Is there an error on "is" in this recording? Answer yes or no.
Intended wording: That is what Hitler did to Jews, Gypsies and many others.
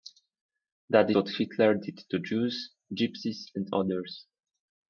yes